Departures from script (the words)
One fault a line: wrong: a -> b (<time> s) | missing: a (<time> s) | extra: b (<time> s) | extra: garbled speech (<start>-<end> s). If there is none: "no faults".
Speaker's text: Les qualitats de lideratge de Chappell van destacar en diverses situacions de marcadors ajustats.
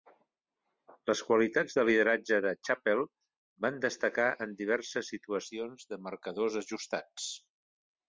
no faults